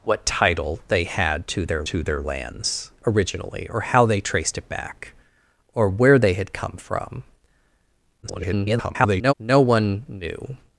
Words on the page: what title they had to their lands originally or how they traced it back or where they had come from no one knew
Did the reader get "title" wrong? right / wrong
right